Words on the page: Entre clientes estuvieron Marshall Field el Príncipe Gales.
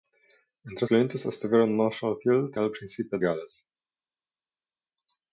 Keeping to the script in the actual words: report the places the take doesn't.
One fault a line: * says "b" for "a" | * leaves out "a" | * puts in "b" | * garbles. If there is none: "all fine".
all fine